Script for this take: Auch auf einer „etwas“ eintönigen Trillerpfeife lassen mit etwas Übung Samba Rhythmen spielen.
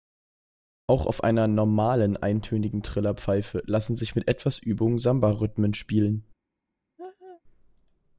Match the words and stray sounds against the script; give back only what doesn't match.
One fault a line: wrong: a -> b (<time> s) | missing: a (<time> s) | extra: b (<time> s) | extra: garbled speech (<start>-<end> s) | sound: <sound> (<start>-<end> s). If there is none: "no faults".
wrong: etwas -> normalen (1.5 s)
extra: sich (4.0 s)
sound: laugh (7.0-7.4 s)